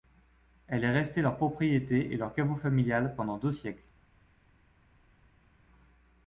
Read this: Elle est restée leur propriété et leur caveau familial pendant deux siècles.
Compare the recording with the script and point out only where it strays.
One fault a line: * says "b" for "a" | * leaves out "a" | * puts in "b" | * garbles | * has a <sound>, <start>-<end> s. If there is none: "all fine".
all fine